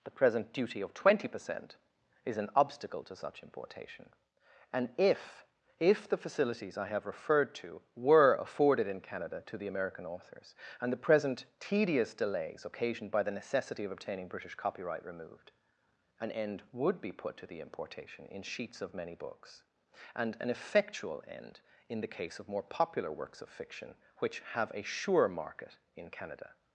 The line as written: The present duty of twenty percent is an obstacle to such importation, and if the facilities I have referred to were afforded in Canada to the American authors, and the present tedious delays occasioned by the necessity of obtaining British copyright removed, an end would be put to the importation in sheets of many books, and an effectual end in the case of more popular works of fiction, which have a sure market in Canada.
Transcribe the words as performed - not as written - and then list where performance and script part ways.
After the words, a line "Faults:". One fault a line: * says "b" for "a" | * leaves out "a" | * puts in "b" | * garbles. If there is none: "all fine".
The present duty of twenty percent is an obstacle to such importation, and if if the facilities I have referred to were afforded in Canada to the American authors, and the present tedious delays occasioned by the necessity of obtaining British copyright removed, an end would be put to the importation in sheets of many books, and an effectual end in the case of more popular works of fiction, which have a sure market in Canada.
Faults:
* puts in "if"